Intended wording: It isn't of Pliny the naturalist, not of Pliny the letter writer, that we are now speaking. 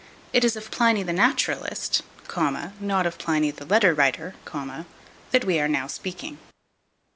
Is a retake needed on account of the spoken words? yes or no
yes